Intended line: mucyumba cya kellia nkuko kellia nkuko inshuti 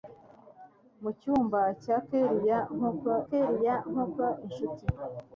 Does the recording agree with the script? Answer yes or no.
yes